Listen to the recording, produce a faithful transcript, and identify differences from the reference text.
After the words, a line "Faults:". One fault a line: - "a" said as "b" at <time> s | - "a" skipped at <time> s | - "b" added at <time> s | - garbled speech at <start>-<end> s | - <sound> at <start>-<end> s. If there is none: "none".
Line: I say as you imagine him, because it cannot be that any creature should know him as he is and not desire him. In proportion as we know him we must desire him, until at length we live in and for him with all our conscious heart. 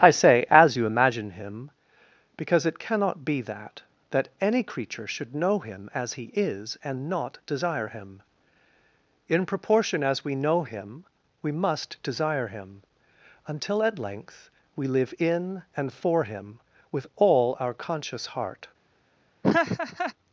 I say as you imagine him, because it cannot be that that any creature should know him as he is and not desire him. In proportion as we know him we must desire him, until at length we live in and for him with all our conscious heart.
Faults:
- "that" added at 4.1 s
- laugh at 19.4-20.1 s